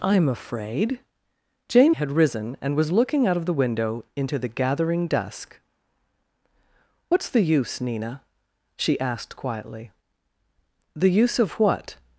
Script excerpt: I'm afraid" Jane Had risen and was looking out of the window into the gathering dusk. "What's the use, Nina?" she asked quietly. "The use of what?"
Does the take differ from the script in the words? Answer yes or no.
no